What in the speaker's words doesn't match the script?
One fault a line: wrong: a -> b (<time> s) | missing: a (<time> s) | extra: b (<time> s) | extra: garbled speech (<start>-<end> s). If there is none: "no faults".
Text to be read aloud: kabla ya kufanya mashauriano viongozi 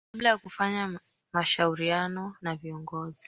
extra: na (2.4 s)